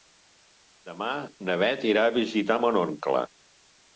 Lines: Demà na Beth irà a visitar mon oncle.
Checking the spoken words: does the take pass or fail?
pass